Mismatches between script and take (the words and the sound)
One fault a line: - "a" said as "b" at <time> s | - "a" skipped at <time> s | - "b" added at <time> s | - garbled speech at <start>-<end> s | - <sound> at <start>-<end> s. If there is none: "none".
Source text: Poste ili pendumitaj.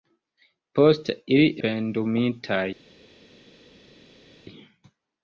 none